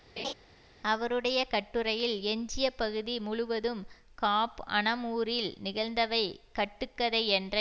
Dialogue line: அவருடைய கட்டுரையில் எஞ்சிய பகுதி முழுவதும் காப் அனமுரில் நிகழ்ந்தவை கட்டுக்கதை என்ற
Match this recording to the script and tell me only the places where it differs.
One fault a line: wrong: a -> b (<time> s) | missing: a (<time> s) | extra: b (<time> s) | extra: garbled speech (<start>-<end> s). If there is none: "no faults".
no faults